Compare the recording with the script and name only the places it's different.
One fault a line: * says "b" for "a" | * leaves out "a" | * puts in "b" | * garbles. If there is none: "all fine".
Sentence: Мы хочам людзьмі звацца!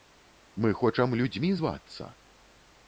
all fine